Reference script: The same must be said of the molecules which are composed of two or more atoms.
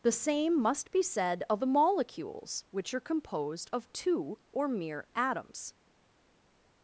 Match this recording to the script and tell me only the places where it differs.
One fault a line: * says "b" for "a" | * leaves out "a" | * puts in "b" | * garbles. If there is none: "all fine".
* says "mere" for "more"